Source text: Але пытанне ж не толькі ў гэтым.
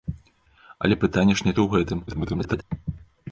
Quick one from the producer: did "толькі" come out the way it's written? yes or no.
no